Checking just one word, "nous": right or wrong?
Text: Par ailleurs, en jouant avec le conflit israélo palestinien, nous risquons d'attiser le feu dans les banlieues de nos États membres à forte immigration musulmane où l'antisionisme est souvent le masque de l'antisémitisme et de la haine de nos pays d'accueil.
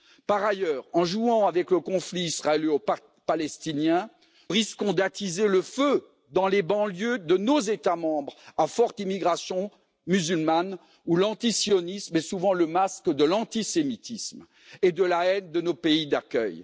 wrong